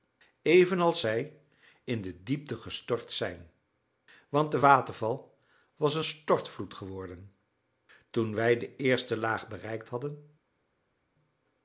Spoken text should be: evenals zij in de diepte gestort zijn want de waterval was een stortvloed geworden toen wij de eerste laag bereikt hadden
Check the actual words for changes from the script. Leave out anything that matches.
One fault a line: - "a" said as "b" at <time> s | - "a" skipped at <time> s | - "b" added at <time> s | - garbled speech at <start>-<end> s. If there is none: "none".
none